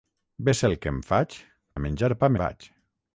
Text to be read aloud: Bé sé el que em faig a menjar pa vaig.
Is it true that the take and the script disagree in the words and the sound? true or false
false